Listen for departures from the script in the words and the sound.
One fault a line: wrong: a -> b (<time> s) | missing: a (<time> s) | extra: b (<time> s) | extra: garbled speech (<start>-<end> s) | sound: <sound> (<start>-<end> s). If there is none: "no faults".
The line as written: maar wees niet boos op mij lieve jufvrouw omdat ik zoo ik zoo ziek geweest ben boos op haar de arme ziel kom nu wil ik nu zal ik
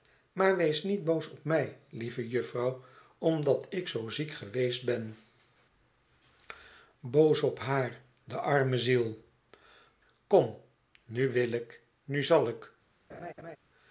missing: ik zoo (4.1 s)
sound: laugh (13.1-13.6 s)